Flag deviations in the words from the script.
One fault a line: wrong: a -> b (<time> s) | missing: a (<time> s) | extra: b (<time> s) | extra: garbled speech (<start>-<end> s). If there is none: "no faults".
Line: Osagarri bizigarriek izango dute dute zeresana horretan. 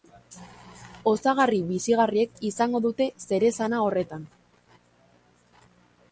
missing: dute (3.1 s)